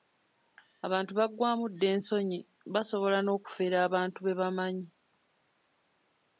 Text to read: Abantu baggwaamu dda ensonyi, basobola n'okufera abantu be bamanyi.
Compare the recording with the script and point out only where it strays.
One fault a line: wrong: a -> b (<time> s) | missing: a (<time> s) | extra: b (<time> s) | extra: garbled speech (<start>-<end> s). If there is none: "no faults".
no faults